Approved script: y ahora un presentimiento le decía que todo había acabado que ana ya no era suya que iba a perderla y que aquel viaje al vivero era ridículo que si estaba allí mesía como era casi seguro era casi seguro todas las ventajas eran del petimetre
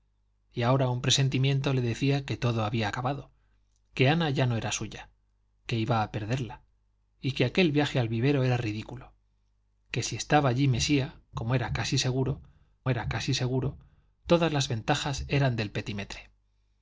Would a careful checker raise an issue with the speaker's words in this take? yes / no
no